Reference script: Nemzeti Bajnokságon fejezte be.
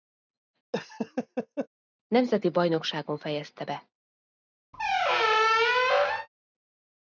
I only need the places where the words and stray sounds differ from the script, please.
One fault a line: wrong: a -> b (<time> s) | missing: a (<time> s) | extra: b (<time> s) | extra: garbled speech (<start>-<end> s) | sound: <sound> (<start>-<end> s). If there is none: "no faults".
sound: laugh (0.7-1.7 s)
sound: squeak (4.7-6.3 s)